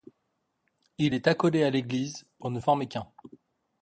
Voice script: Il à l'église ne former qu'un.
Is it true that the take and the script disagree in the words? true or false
true